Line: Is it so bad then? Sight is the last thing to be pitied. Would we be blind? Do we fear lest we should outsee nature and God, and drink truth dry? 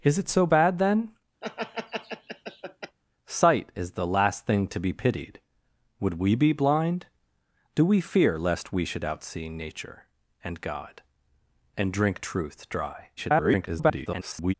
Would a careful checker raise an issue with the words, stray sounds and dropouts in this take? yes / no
yes